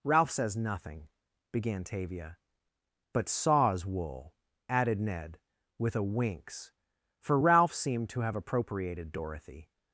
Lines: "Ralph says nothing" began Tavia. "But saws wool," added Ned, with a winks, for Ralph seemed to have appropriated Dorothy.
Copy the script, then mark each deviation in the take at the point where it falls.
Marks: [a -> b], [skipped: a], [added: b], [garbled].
"Ralph says nothing" began Tavia. "But saws wool," added Ned, with a winks, for Ralph seemed to have appropriated Dorothy.